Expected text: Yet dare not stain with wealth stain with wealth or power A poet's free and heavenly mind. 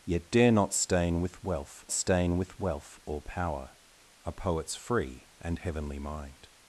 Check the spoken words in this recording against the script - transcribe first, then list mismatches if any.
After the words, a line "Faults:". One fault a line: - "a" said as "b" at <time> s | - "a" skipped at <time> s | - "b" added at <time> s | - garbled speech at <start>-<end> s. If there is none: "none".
Yet dare not stain with wealth stain with wealth or power A poet's free and heavenly mind.
Faults:
none